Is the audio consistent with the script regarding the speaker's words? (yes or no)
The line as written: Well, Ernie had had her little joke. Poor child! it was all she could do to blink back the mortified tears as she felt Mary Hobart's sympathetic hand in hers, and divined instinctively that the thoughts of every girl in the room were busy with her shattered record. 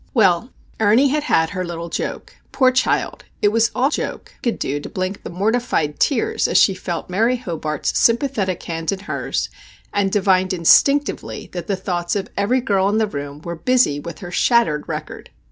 no